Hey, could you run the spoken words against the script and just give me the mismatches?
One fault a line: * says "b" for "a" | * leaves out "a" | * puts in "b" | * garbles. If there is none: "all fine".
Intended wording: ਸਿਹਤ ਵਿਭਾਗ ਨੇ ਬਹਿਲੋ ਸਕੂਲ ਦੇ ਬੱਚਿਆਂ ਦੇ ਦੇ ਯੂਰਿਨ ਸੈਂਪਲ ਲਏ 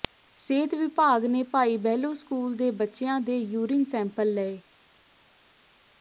* puts in "ਭਾਈ"
* leaves out "ਦੇ"